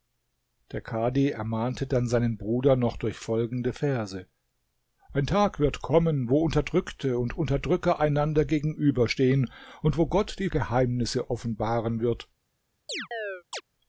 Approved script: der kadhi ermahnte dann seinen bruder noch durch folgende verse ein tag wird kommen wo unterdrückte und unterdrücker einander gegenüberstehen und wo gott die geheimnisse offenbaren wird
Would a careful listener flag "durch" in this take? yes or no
no